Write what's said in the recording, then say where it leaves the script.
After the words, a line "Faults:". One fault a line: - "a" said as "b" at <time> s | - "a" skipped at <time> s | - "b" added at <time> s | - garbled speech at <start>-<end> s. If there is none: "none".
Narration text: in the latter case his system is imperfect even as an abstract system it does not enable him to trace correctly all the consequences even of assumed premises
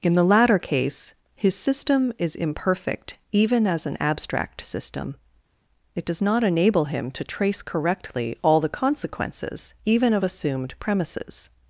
in the latter case his system is imperfect even as an abstract system it does not enable him to trace correctly all the consequences even of assumed premises
Faults:
none